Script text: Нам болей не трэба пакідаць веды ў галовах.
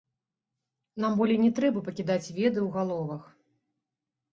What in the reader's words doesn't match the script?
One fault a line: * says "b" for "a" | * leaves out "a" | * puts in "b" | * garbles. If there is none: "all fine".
all fine